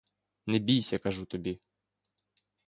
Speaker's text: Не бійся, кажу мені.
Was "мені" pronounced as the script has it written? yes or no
no